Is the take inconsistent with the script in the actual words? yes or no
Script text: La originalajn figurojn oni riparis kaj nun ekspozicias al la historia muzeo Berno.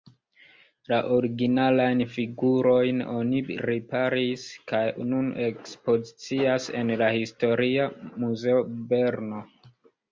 yes